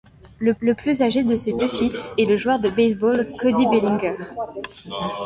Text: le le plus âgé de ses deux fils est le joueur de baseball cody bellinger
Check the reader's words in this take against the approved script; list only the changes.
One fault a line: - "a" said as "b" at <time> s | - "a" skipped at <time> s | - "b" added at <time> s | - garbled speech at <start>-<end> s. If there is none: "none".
none